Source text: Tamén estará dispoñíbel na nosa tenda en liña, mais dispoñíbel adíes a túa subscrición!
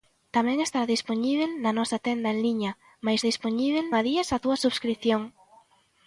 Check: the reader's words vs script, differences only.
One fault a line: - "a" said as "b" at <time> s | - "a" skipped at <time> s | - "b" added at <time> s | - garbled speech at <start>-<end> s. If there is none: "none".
none